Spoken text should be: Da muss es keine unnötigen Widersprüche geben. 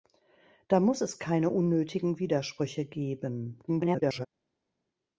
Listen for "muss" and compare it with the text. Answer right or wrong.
right